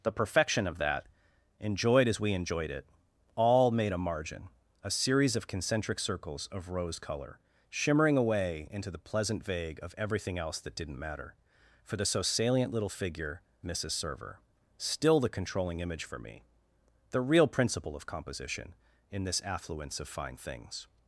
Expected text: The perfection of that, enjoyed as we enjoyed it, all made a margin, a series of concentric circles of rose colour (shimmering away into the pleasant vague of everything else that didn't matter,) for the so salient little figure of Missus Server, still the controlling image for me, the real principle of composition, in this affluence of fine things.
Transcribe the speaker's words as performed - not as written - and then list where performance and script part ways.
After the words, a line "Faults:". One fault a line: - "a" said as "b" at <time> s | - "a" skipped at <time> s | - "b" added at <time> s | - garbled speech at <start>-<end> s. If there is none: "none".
The perfection of that, enjoyed as we enjoyed it, all made a margin, a series of concentric circles of rose colour (shimmering away into the pleasant vague of everything else that didn't matter,) for the so salient little figure Missus Server, still the controlling image for me, the real principle of composition, in this affluence of fine things.
Faults:
- "of" skipped at 13.4 s